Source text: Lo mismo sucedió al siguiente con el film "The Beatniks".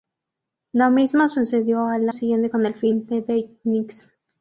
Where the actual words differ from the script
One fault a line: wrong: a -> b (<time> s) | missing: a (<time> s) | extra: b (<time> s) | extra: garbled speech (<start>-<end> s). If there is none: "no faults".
no faults